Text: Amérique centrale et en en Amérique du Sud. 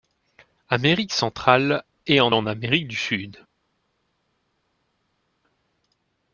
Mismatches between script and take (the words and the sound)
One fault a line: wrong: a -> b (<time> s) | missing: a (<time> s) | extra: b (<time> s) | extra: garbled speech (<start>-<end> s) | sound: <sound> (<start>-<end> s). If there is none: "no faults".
no faults